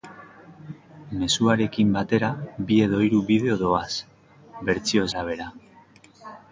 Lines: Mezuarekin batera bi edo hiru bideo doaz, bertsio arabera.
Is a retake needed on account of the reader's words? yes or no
no